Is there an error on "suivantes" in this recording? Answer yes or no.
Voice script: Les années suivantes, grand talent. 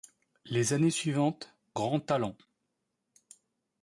no